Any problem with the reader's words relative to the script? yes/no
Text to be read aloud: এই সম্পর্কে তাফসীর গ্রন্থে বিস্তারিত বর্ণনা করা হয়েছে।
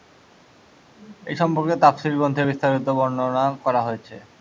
no